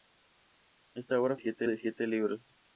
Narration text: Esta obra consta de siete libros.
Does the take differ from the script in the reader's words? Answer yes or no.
yes